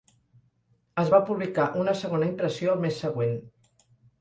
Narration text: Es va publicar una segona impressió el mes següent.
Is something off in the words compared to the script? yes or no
no